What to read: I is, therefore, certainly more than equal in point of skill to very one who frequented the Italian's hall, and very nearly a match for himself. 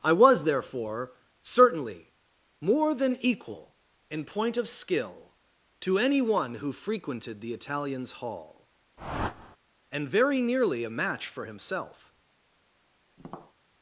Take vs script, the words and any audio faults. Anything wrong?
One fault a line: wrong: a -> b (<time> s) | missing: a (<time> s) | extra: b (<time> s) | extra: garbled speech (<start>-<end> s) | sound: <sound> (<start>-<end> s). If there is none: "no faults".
wrong: is -> was (0.1 s)
wrong: very -> any (6.0 s)
sound: whoosh (9.0-9.6 s)
sound: tap (13.2-13.5 s)